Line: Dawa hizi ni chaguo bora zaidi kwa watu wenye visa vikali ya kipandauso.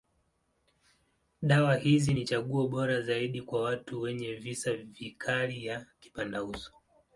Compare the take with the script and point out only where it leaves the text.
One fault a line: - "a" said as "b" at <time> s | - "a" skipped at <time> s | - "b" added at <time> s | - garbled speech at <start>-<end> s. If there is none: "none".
none